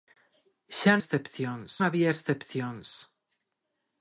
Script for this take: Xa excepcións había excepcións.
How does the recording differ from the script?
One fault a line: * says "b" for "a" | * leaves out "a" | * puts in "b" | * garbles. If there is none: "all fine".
all fine